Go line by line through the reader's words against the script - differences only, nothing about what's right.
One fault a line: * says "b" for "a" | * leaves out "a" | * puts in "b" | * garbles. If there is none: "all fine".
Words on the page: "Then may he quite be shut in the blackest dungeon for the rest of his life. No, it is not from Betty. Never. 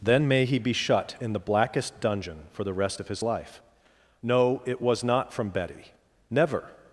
* leaves out "quite"
* says "was" for "is"